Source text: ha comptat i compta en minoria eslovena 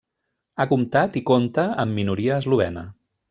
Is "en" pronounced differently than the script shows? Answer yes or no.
yes